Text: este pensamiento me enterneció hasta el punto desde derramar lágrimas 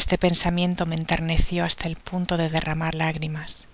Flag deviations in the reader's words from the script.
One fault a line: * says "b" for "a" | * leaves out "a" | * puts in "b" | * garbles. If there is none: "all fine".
* says "de" for "desde"